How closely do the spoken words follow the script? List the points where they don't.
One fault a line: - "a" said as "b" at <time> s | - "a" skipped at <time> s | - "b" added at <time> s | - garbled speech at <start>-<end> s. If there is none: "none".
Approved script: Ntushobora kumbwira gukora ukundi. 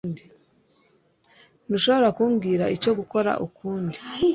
- "icyo" added at 2.8 s